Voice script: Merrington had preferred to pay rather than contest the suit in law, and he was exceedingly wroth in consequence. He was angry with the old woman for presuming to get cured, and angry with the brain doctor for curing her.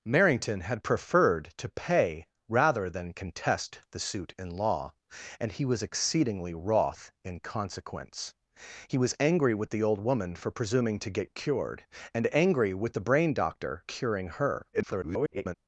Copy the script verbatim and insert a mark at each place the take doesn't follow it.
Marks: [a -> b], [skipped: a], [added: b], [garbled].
Merrington had preferred to pay rather than contest the suit in law, and he was exceedingly wroth in consequence. He was angry with the old woman for presuming to get cured, and angry with the brain doctor [skipped: for] curing her. [garbled]